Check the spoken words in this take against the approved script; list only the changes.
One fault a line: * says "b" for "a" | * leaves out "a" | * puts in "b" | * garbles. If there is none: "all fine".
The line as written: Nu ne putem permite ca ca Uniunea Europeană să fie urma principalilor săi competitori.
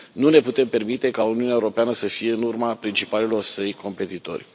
* leaves out "ca"
* puts in "în"